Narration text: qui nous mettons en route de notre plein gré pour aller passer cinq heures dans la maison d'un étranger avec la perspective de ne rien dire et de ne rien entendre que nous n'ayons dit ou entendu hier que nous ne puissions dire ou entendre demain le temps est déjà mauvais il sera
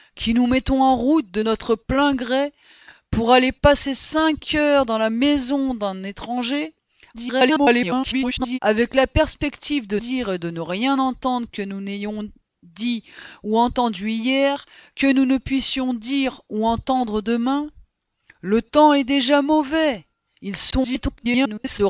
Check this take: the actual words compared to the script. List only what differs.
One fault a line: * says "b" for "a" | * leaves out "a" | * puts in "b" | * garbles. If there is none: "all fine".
* garbles
* leaves out "ne rien"
* garbles